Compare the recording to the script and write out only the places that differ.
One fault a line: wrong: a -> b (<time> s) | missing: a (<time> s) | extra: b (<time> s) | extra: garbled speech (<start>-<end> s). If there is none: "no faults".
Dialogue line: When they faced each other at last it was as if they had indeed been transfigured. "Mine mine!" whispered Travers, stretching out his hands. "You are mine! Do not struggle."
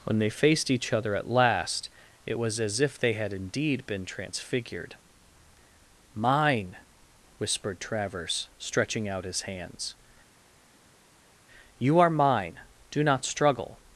missing: mine (6.8 s)